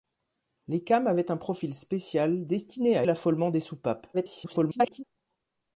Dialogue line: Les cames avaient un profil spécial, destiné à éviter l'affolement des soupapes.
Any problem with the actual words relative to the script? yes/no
yes